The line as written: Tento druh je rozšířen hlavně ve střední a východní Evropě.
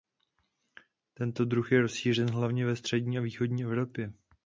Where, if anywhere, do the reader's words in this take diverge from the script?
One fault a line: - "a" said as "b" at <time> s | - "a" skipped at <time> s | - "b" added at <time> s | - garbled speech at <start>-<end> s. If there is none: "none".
none